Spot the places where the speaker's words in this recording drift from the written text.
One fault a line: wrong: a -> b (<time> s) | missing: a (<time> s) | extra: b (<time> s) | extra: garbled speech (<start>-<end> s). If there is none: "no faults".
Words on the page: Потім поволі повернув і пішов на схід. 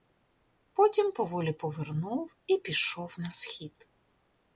no faults